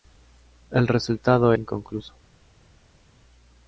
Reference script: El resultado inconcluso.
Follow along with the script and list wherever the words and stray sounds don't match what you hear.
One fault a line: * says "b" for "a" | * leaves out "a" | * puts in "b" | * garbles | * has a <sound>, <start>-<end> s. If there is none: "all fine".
all fine